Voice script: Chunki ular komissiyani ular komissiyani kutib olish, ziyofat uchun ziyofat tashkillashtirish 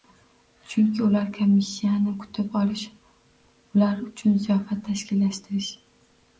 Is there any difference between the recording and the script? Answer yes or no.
yes